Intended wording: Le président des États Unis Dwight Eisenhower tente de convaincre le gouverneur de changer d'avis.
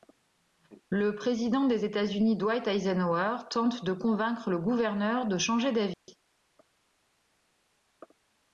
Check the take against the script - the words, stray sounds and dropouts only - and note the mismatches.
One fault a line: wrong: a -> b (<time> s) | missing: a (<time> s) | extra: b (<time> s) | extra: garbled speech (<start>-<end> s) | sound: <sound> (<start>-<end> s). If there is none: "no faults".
sound: dropout (5.9-6.1 s)